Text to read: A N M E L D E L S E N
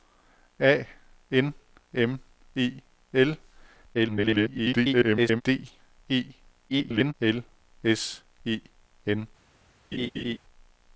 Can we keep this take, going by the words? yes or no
no